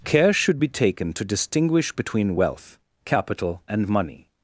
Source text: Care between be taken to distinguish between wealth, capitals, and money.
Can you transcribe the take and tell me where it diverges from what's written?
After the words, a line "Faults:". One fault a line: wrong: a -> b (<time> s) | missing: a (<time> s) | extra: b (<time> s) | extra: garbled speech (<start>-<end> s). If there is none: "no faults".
Care should be taken to distinguish between wealth, capital, and money.
Faults:
wrong: between -> should (0.3 s)
wrong: capitals -> capital (3.0 s)